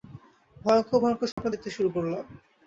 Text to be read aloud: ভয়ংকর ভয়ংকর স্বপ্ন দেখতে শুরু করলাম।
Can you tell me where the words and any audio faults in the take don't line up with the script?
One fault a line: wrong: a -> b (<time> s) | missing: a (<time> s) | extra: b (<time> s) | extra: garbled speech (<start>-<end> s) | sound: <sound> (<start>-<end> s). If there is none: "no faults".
sound: dropout (1.3-1.4 s)